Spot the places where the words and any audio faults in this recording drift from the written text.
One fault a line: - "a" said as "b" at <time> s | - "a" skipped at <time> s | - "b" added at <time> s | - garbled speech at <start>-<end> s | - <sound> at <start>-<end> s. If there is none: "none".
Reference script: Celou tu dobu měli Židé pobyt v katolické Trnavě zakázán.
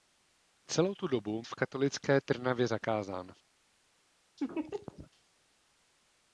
- "měli Židé pobyt" skipped at 1.4 s
- laugh at 4.4-5.1 s